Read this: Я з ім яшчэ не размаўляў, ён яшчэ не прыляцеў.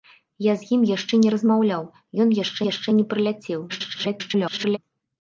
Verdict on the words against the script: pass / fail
fail